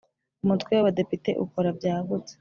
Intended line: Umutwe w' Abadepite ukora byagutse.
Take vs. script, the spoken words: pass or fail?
pass